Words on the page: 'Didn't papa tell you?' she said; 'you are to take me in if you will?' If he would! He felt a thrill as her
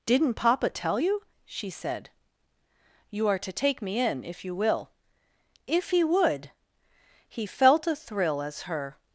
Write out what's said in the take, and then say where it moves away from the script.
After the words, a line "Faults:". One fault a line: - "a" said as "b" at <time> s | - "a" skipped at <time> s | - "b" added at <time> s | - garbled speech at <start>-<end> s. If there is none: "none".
'Didn't papa tell you?' she said; 'you are to take me in if you will?' If he would! He felt a thrill as her
Faults:
none